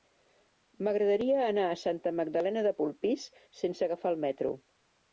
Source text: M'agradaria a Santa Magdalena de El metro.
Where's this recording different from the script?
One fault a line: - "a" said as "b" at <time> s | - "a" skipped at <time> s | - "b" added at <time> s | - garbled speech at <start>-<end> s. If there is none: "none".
- "anar" added at 1.5 s
- "Polpís sense agafar" added at 2.8 s